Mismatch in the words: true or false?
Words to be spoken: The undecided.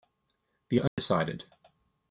false